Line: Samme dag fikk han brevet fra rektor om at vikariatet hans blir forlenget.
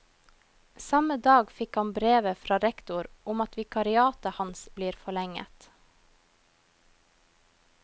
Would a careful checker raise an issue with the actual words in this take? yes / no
no